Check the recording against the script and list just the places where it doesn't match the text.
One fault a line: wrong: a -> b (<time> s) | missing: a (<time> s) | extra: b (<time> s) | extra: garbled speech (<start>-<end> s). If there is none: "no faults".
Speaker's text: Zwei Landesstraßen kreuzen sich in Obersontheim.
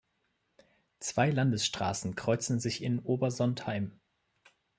no faults